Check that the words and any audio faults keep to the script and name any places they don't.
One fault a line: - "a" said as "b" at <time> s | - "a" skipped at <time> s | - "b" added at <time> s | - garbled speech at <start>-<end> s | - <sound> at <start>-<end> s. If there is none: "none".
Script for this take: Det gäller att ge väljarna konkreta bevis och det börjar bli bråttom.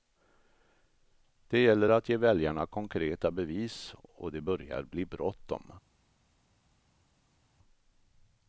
none